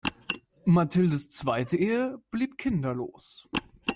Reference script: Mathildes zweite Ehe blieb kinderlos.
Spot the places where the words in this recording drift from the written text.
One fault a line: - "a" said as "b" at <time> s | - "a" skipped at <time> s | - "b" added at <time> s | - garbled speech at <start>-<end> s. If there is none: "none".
none